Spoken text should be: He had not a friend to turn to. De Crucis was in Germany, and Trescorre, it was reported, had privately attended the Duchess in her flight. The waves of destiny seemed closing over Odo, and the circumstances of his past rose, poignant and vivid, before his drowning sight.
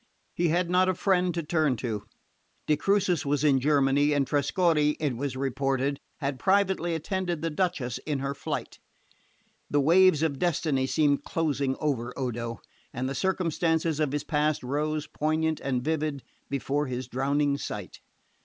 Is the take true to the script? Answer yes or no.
yes